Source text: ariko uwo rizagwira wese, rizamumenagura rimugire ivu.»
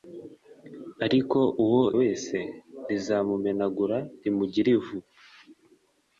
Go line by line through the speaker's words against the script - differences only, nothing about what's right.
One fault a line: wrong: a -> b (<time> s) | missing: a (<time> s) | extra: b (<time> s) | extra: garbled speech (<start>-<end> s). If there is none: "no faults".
missing: rizagwira (1.8 s)